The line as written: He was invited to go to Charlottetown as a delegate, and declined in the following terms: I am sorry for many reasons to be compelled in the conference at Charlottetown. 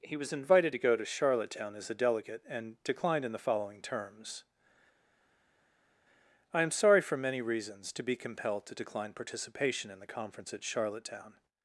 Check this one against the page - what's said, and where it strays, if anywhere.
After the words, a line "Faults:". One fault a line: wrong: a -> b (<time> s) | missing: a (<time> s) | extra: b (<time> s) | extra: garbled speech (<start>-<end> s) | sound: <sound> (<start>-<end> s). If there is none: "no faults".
He was invited to go to Charlottetown as a delegate, and declined in the following terms: I am sorry for many reasons to be compelled to decline participation in the conference at Charlottetown.
Faults:
extra: to decline participation (8.7 s)